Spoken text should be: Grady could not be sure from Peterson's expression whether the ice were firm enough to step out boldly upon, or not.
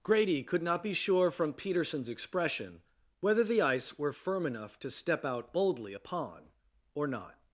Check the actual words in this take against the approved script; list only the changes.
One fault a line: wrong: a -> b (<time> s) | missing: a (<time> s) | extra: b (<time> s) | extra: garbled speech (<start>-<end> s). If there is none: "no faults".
no faults